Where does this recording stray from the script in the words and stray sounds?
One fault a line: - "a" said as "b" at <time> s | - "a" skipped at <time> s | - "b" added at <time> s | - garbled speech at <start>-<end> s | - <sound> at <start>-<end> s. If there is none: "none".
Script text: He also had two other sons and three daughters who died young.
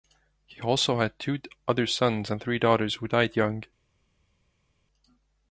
none